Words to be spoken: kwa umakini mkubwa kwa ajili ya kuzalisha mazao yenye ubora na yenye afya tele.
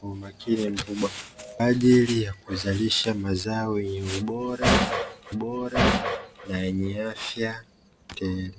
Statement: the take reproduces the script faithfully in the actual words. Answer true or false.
false